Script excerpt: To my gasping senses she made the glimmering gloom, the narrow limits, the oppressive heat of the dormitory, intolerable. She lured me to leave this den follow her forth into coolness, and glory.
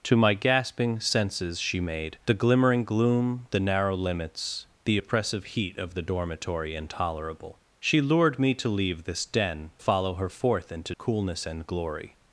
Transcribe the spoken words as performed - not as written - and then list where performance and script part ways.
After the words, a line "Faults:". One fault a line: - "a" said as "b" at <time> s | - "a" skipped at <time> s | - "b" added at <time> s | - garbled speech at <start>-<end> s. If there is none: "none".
To my gasping senses she made the glimmering gloom, the narrow limits, the oppressive heat of the dormitory, intolerable. She lured me to leave this den follow her forth into coolness, and glory.
Faults:
none